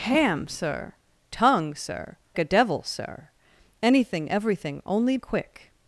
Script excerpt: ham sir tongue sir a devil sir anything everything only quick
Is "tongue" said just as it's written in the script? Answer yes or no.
yes